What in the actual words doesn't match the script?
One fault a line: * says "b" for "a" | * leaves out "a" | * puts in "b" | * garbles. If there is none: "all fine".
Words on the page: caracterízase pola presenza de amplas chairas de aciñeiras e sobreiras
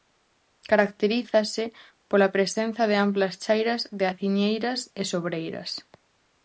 all fine